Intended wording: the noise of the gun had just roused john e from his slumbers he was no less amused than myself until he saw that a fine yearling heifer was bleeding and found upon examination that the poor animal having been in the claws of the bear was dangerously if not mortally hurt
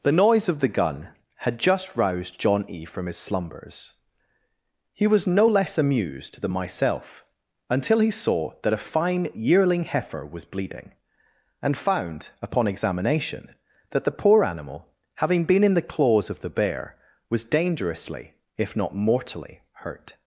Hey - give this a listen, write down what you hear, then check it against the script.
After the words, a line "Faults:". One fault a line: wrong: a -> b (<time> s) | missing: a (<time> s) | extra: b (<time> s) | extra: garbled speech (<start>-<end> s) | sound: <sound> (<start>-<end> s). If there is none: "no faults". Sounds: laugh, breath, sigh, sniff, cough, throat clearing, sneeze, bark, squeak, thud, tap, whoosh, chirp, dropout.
the noise of the gun had just roused john e from his slumbers he was no less amused than myself until he saw that a fine yearling heifer was bleeding and found upon examination that the poor animal having been in the claws of the bear was dangerously if not mortally hurt
Faults:
no faults